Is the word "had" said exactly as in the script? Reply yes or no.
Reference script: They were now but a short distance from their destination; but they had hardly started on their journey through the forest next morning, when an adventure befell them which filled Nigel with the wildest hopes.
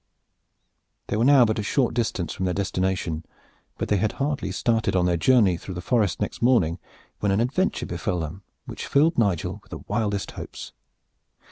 yes